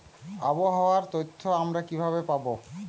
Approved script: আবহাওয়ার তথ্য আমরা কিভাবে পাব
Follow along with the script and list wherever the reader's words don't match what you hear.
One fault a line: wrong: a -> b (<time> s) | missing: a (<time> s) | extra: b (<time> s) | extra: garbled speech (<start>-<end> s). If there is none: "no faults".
no faults